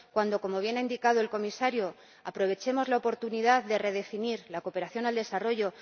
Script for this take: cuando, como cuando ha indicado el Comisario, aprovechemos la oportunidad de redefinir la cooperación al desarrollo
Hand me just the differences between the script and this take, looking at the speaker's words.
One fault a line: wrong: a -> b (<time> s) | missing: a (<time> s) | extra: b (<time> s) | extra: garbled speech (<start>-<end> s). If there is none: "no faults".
wrong: cuando -> bien (0.6 s)